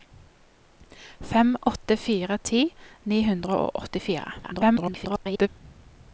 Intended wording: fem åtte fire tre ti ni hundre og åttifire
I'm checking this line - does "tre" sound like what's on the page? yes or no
no